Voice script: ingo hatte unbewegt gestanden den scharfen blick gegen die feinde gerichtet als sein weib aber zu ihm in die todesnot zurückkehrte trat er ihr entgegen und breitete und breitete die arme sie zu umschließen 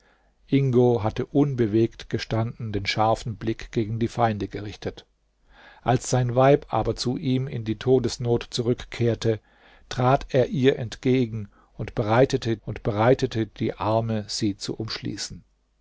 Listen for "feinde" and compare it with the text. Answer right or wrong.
right